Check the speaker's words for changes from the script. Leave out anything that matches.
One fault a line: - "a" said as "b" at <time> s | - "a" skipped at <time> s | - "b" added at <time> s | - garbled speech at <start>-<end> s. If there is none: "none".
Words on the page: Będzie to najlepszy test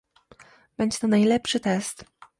none